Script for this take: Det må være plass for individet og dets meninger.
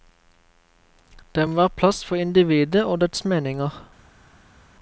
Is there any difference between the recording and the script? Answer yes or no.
no